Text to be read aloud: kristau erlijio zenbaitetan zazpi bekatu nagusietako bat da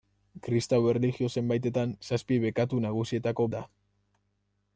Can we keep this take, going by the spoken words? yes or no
no